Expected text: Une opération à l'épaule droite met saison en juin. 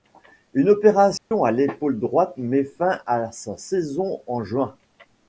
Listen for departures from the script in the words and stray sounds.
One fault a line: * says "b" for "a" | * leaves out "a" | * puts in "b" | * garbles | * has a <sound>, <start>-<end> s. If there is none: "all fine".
* has a dropout, 1.2-1.3 s
* puts in "fin à sa"